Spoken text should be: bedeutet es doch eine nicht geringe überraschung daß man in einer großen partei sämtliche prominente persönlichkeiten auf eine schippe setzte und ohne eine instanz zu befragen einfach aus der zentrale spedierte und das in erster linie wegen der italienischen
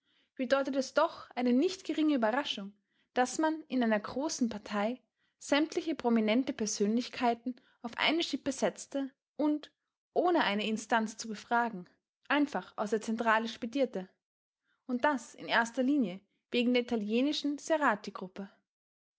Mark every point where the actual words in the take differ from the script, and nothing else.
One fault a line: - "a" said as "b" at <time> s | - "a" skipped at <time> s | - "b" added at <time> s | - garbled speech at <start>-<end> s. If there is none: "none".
none